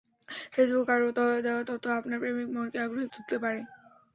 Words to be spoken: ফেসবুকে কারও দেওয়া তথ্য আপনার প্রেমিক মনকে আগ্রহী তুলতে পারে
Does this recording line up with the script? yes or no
yes